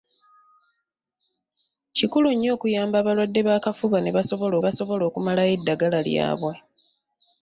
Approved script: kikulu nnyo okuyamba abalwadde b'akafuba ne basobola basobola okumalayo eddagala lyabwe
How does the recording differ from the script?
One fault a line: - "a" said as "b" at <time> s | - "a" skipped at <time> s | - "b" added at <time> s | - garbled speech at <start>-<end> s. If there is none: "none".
none